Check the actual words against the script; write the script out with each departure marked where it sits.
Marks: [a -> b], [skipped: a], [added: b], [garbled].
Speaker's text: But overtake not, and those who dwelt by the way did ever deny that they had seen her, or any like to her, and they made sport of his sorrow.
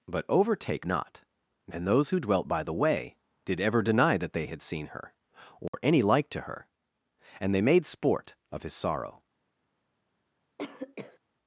But overtake not, and those who dwelt by the way did ever deny that they had seen her, or any like to her, and they made sport of his sorrow.